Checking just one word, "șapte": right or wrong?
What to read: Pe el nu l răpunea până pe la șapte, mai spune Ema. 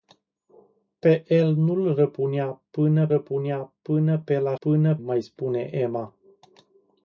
wrong